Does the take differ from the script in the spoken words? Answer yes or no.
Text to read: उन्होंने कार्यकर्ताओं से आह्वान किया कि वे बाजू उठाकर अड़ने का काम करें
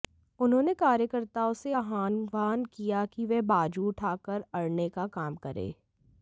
no